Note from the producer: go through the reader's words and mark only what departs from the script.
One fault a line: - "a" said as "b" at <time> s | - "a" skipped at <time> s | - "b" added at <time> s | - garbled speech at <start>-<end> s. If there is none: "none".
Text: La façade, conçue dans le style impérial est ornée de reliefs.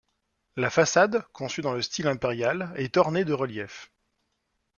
none